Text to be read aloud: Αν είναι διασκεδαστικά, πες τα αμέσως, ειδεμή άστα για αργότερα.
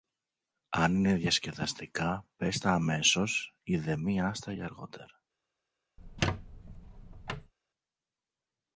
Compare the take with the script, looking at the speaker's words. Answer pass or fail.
pass